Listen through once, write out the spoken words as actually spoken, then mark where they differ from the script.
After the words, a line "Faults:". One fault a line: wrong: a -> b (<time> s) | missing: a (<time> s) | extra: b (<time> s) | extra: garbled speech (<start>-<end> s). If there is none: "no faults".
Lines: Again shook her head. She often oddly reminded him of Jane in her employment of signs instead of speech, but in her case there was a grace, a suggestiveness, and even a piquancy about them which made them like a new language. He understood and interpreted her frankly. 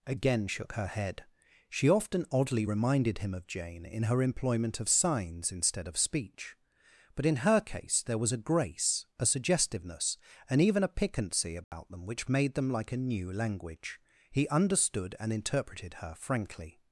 Again shook her head. She often oddly reminded him of Jane in her employment of signs instead of speech, but in her case there was a grace, a suggestiveness, and even a piquancy about them which made them like a new language. He understood and interpreted her frankly.
Faults:
no faults